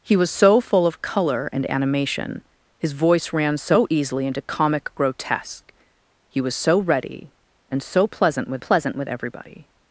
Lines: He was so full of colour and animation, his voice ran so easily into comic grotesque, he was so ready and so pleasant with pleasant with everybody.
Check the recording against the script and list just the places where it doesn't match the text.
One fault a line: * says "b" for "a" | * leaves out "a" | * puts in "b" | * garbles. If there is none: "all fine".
all fine